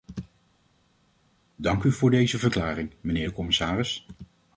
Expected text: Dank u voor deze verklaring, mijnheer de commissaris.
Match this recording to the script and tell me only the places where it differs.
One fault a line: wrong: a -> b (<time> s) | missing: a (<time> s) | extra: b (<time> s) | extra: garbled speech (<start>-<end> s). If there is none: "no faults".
no faults